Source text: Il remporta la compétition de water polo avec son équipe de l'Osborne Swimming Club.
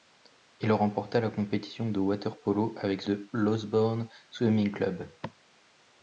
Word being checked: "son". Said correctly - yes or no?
no